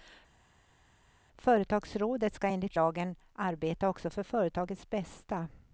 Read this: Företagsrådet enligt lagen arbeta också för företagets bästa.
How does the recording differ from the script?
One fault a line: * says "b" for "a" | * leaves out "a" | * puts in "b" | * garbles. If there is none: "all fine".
* puts in "ska"